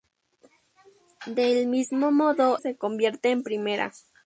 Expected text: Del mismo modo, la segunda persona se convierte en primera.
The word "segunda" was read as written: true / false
false